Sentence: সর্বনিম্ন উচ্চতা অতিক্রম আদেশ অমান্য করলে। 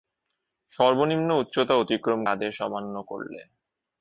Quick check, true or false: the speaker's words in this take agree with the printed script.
true